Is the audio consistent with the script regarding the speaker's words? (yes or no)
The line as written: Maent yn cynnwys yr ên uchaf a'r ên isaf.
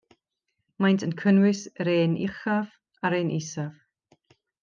yes